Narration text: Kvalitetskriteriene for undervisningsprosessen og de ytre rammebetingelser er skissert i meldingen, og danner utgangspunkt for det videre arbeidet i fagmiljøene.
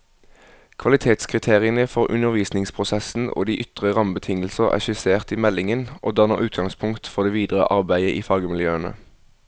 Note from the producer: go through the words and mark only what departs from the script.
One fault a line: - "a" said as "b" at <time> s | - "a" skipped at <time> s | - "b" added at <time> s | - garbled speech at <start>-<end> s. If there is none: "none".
none